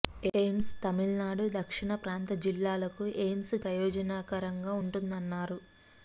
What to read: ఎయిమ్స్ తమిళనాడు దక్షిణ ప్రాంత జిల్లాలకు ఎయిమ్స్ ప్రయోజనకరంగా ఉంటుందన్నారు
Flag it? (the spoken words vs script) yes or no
no